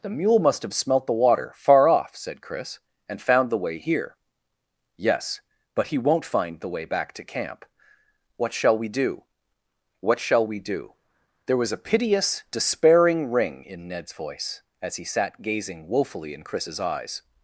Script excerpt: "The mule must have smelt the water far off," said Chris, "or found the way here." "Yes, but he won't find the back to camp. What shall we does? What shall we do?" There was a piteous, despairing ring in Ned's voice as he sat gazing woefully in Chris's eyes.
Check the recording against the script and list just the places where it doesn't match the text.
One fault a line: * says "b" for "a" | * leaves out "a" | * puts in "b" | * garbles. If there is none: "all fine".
* says "and" for "or"
* puts in "way"
* says "do" for "does"